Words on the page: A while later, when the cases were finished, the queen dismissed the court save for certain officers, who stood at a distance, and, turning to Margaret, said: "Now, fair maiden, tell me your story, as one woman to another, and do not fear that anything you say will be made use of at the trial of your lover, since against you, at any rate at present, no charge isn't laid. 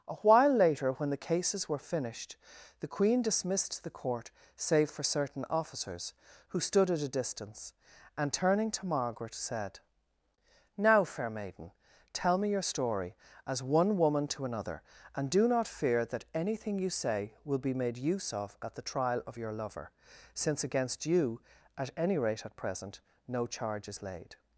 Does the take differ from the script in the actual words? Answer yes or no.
yes